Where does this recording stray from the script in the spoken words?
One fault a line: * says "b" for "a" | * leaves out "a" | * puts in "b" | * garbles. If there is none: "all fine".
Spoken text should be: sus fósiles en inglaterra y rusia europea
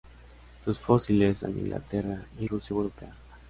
all fine